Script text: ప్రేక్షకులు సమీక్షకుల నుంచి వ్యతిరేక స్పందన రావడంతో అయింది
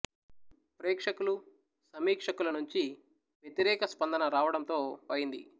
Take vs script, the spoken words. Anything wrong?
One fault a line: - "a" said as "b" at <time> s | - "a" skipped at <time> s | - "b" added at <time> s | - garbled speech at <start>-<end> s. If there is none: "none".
none